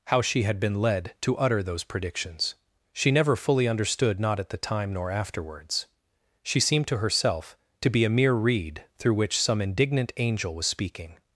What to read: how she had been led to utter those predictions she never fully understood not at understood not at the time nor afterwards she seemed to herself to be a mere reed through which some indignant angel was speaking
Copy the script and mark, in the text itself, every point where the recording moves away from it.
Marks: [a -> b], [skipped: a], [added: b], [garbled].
how she had been led to utter those predictions she never fully understood not at [skipped: understood not at] the time nor afterwards she seemed to herself to be a mere reed through which some indignant angel was speaking